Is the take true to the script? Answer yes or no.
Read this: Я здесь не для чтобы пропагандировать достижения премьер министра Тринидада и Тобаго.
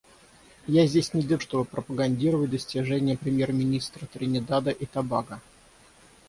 yes